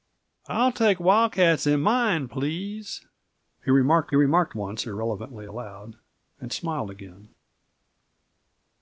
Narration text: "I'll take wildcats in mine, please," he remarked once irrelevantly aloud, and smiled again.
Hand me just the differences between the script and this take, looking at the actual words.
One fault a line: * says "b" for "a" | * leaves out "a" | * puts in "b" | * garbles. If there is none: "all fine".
* puts in "remarked"